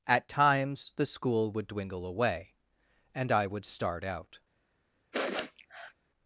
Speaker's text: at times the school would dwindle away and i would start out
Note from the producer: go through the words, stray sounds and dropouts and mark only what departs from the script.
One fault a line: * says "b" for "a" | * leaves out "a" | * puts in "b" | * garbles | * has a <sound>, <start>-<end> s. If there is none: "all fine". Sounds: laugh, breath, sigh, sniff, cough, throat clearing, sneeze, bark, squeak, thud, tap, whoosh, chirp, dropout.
* has a sniff, 5.1-5.9 s